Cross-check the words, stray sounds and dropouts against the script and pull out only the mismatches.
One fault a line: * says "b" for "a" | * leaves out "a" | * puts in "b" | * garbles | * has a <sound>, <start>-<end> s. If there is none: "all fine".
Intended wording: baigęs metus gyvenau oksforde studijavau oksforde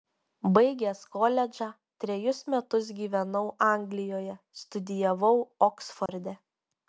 * puts in "koledžą trejus"
* says "anglijoje" for "oksforde"
* has a dropout, 6.1-6.1 s